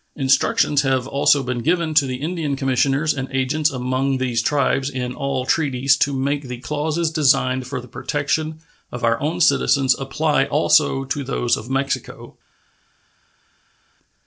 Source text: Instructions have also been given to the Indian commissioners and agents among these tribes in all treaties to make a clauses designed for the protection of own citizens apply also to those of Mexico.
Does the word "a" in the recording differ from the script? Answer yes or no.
yes